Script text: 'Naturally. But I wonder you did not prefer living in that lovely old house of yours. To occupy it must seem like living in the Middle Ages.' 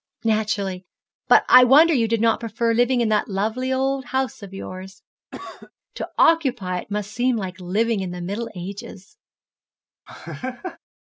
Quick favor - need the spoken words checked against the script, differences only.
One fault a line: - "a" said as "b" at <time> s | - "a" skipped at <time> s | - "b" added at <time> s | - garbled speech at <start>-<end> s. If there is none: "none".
none